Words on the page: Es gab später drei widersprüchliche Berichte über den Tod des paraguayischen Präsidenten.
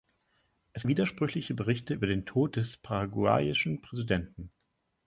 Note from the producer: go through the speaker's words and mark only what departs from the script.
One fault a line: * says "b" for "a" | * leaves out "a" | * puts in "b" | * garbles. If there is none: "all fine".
* leaves out "gab später drei"